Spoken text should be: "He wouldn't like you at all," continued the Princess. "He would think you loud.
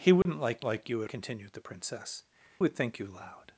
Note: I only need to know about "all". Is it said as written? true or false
false